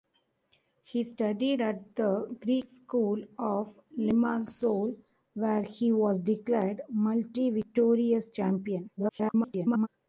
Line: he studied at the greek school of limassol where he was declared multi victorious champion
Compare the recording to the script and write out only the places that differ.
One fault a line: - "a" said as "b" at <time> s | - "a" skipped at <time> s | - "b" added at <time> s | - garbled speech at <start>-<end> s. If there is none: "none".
- garbled speech at 9.0-9.9 s